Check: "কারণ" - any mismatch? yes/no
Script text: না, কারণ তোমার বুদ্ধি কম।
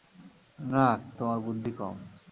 yes